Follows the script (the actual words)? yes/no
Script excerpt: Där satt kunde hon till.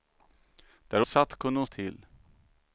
yes